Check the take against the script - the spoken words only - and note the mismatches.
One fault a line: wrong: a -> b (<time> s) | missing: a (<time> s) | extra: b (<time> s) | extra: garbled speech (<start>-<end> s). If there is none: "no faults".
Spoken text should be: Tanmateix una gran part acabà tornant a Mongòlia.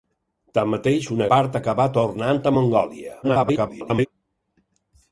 missing: gran (1.3 s)
extra: garbled speech (3.2-4.1 s)